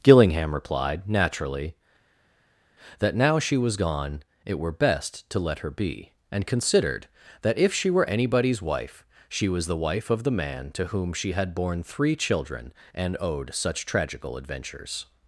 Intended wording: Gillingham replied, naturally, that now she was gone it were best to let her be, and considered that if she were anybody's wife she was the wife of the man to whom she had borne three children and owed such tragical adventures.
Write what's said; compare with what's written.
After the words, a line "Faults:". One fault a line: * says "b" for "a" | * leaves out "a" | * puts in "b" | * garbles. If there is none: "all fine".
Gillingham replied, naturally, that now she was gone it were best to let her be, and considered that if she were anybody's wife she was the wife of the man to whom she had borne three children and owed such tragical adventures.
Faults:
all fine